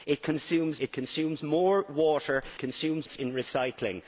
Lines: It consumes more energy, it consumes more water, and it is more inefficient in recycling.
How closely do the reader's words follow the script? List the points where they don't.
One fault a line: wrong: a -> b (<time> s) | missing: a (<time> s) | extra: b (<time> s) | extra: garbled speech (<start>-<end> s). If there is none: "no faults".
missing: more energy (0.8 s)
wrong: and -> consumes (2.6 s)
missing: more inefficient (3.2 s)